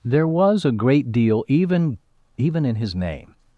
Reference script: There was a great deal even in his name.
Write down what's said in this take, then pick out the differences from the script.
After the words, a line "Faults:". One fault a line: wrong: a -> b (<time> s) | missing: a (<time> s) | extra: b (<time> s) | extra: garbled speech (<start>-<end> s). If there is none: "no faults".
There was a great deal even even in his name.
Faults:
extra: even (2.4 s)